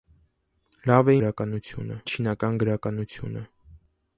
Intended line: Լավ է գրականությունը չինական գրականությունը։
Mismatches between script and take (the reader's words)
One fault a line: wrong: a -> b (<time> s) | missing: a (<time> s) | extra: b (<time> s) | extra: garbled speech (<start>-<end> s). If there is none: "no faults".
no faults